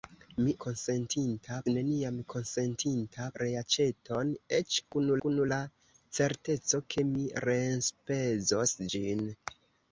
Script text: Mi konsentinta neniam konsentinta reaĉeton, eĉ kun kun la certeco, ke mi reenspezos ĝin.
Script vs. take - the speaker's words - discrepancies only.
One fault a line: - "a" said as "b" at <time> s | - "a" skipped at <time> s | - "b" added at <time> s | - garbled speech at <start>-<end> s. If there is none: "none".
none